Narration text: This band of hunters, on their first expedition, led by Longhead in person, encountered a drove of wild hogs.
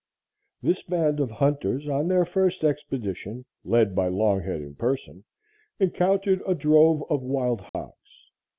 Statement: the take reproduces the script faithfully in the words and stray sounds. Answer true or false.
false